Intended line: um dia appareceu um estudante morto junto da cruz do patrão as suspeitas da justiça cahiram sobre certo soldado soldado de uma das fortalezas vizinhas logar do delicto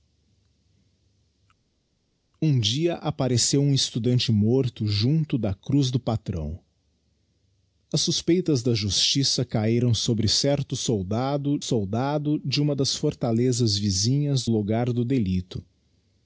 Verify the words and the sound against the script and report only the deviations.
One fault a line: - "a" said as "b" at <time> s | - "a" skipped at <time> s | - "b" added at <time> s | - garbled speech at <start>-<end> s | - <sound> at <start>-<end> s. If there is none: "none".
none